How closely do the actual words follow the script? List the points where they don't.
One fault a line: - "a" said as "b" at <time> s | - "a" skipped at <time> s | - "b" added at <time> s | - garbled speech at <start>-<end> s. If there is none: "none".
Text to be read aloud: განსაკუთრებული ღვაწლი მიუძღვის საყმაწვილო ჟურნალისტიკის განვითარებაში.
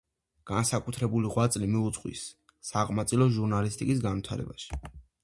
none